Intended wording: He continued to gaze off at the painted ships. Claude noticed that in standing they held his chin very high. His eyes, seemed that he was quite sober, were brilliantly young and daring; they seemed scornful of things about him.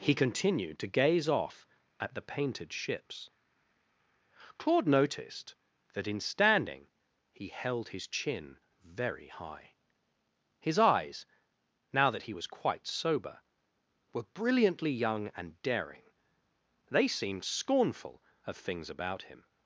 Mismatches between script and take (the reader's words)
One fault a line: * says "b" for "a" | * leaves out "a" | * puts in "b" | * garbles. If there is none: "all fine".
* says "he" for "they"
* says "now" for "seemed"